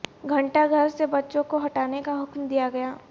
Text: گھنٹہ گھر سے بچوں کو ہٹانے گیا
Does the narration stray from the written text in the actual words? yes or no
yes